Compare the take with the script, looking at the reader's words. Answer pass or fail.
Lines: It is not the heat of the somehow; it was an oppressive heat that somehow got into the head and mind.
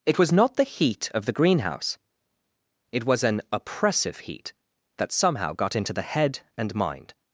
fail